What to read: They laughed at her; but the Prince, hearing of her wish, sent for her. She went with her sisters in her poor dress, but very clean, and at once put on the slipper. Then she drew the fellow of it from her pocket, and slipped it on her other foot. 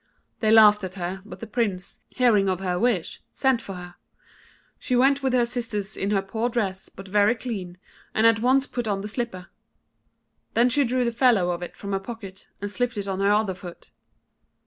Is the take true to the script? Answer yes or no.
yes